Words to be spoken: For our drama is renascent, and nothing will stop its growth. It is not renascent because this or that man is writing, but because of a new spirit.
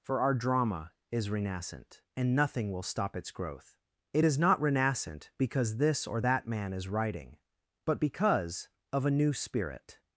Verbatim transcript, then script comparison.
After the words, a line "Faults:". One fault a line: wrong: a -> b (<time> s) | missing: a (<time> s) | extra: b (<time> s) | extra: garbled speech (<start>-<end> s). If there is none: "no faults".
For our drama is renascent, and nothing will stop its growth. It is not renascent because this or that man is writing, but because of a new spirit.
Faults:
no faults